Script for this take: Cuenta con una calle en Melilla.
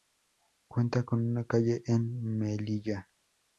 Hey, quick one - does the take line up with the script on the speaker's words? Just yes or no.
yes